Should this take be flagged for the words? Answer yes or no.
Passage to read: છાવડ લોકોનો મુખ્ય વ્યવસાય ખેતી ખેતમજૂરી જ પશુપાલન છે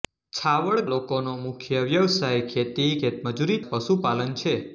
no